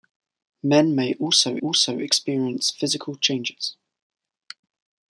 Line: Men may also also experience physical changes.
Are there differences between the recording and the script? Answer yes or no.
no